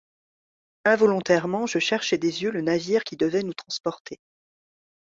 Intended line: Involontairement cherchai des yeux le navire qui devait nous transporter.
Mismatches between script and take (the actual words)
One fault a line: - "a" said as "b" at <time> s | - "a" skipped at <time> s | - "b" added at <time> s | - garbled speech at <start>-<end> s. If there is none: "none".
- "je" added at 1.7 s